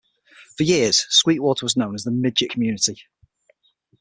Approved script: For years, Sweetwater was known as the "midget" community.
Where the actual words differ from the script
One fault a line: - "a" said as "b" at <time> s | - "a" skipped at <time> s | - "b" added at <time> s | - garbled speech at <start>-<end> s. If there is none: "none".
none